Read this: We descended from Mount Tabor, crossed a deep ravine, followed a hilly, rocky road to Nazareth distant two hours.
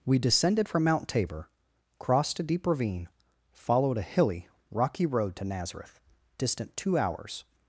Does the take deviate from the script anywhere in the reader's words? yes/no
no